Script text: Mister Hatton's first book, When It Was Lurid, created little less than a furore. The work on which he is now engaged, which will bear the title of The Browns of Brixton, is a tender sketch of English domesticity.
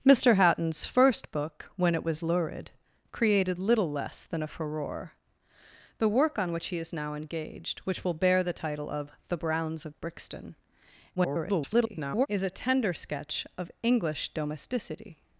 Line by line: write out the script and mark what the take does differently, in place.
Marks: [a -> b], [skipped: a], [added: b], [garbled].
Mister Hatton's first book, When It Was Lurid, created little less than a furore. The work on which he is now engaged, which will bear the title of The Browns of Brixton, [garbled] is a tender sketch of English domesticity.